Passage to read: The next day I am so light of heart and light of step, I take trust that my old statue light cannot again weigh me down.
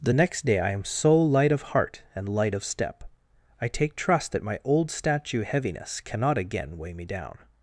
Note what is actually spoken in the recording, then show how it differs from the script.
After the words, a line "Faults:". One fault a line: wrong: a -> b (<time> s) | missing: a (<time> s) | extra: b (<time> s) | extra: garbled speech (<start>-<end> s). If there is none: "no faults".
The next day I am so light of heart and light of step, I take trust that my old statue heaviness cannot again weigh me down.
Faults:
wrong: light -> heaviness (5.4 s)